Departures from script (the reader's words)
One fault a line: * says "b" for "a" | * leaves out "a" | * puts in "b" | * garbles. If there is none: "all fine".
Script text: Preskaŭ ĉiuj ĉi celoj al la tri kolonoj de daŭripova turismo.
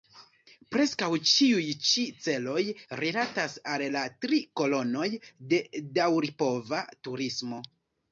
* puts in "rilatas"